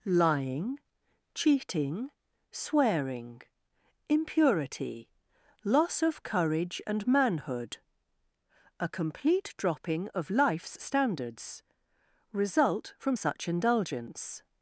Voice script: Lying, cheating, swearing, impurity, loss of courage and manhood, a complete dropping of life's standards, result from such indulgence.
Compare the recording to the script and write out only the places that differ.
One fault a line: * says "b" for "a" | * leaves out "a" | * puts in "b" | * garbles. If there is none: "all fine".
all fine